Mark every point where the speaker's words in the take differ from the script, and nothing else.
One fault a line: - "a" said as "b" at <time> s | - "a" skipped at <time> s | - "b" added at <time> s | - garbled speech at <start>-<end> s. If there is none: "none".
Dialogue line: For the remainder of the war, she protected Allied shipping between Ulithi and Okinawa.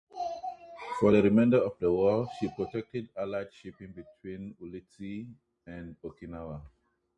none